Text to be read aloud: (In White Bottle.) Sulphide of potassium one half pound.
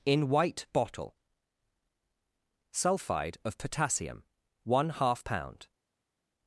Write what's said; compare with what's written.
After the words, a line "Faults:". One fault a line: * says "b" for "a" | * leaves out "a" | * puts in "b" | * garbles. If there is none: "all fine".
(In White Bottle.) Sulphide of potassium one half pound.
Faults:
all fine